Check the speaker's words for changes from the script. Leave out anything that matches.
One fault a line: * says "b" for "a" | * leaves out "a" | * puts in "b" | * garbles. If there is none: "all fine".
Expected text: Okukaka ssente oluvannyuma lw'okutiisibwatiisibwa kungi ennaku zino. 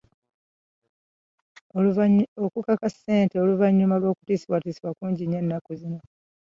* puts in "nnyo"